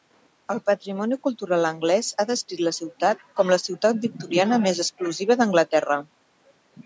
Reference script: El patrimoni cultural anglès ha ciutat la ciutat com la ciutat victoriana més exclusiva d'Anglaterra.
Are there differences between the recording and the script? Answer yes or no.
yes